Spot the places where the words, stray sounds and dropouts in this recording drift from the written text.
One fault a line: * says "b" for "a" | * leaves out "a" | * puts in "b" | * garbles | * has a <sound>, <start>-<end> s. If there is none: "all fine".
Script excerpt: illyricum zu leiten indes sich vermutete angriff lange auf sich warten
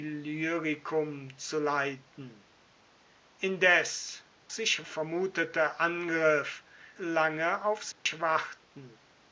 * has a dropout, 7.9-8.1 s